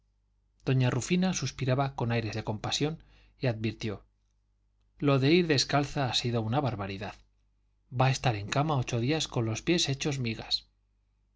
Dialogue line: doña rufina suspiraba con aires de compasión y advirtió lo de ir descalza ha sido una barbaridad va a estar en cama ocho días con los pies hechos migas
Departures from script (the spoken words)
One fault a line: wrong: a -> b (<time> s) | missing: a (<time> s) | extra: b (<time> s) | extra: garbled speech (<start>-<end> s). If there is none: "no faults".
no faults